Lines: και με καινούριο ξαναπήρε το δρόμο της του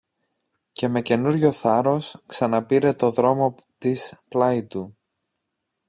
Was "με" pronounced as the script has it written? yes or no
yes